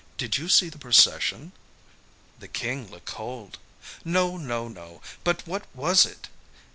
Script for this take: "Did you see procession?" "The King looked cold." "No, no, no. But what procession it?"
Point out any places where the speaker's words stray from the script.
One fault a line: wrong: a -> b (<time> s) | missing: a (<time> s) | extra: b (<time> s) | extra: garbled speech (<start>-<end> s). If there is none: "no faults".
extra: the (0.7 s)
wrong: procession -> was (5.7 s)